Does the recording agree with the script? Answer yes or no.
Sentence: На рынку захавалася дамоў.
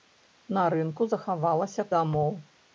yes